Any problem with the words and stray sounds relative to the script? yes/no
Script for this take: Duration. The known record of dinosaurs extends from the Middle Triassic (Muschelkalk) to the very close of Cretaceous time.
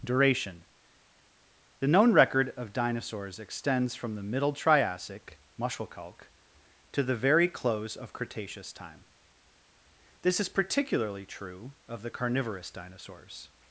yes